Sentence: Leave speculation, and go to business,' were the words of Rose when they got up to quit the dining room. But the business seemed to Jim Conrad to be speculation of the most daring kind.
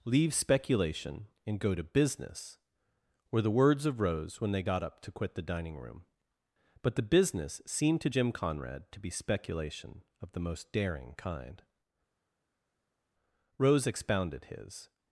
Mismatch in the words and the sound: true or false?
true